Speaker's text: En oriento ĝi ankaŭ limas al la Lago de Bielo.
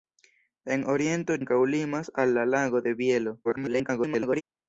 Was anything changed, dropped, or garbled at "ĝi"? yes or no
yes